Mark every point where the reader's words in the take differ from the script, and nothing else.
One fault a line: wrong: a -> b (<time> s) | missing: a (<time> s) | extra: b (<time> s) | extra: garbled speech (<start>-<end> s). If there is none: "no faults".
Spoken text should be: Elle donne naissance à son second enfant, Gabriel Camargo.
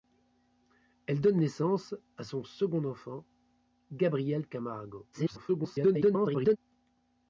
extra: garbled speech (5.1-6.6 s)